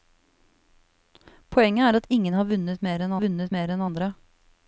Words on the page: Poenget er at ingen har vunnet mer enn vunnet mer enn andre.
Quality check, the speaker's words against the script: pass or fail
pass